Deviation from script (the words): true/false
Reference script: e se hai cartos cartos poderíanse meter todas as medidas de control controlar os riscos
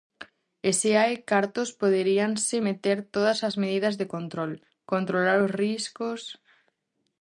true